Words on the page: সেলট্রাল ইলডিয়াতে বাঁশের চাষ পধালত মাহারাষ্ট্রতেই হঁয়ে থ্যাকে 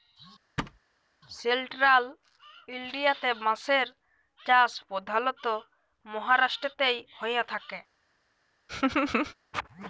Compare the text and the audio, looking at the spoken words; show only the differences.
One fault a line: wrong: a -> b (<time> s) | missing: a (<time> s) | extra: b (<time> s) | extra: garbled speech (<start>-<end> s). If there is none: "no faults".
no faults